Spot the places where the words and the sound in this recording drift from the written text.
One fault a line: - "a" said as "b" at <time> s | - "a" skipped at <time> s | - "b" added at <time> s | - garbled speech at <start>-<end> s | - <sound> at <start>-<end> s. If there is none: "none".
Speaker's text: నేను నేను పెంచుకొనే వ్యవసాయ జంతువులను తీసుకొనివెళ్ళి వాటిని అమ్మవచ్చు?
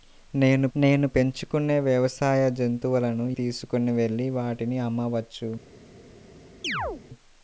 - chirp at 6.6-7.0 s